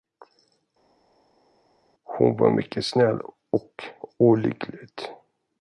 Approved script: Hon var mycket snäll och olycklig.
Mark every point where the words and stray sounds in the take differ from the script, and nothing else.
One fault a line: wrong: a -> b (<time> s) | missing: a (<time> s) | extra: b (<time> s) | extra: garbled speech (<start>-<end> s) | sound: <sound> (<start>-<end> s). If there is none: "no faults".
no faults